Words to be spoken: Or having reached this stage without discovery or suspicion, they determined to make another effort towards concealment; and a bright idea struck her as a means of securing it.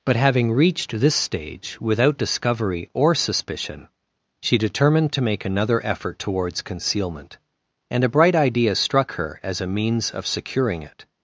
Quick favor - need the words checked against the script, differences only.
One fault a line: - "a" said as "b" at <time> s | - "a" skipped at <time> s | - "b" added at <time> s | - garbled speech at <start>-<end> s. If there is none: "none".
- "Or" said as "But" at 0.0 s
- "they" said as "she" at 4.4 s